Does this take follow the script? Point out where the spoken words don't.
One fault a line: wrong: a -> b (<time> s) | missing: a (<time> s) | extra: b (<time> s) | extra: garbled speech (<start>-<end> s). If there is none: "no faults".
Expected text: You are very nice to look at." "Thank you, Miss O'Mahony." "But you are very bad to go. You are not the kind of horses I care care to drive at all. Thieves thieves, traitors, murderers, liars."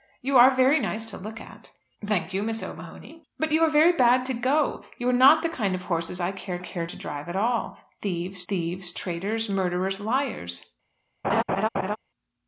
no faults